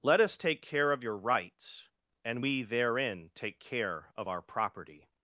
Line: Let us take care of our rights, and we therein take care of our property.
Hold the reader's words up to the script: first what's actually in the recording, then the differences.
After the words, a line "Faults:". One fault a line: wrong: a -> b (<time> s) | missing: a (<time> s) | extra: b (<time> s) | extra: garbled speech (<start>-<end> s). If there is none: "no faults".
Let us take care of your rights, and we therein take care of our property.
Faults:
wrong: our -> your (1.0 s)